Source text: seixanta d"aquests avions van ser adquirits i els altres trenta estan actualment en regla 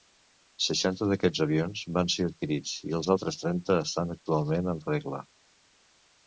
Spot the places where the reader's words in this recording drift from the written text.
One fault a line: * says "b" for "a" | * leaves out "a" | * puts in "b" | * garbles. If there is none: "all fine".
all fine